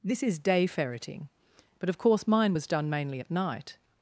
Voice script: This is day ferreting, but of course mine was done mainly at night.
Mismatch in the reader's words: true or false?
false